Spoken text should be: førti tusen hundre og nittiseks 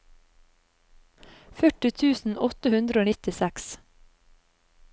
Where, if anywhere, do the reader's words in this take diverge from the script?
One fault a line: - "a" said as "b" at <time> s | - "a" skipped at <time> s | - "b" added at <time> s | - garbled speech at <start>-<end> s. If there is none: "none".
- "åtte" added at 2.5 s